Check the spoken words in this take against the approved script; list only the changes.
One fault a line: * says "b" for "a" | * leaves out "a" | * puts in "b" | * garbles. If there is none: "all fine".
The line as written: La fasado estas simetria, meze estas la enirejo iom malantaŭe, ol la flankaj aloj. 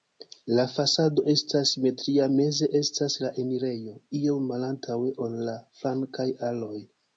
all fine